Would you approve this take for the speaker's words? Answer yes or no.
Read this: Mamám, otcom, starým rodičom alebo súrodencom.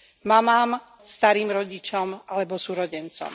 no